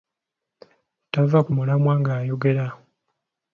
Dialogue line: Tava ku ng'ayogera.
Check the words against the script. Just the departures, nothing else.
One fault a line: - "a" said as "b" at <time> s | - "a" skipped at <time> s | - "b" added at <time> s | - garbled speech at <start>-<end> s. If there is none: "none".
- "mulamwa" added at 1.6 s